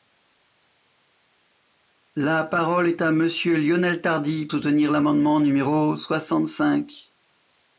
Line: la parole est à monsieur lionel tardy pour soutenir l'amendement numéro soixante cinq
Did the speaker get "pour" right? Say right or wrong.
wrong